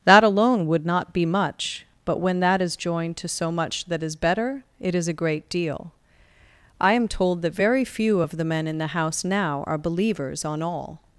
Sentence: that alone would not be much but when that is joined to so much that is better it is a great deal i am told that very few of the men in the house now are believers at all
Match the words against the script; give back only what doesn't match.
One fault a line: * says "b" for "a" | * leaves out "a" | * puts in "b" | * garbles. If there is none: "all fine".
* says "on" for "at"